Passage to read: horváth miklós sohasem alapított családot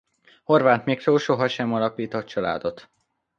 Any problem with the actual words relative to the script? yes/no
no